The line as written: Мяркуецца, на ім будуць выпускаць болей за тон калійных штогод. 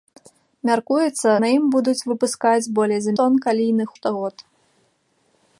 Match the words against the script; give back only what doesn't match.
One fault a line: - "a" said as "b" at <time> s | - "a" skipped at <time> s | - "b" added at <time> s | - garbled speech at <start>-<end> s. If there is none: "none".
none